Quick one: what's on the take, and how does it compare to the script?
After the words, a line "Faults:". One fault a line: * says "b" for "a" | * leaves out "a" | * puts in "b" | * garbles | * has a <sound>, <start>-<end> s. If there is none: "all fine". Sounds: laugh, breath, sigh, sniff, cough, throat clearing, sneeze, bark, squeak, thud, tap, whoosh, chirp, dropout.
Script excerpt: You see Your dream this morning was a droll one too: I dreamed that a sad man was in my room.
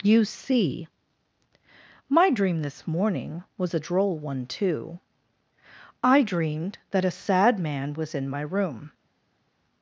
You see My dream this morning was a droll one too: I dreamed that a sad man was in my room.
Faults:
* says "My" for "Your"